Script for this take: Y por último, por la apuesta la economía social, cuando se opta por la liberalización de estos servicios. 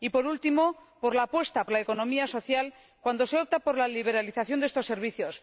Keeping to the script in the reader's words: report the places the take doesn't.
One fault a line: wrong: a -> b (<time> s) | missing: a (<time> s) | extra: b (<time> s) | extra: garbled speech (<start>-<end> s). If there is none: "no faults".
no faults